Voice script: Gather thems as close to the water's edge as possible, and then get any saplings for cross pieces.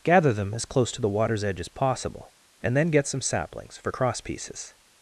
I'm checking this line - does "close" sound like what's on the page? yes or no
yes